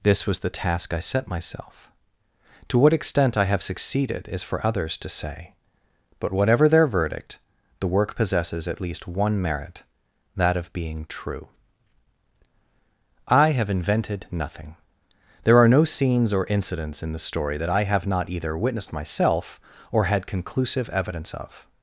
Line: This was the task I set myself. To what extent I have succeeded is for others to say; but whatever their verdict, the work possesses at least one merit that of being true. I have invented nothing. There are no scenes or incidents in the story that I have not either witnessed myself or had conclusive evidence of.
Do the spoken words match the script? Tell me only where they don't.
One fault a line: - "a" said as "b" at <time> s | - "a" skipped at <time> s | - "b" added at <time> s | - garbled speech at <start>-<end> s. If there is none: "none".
none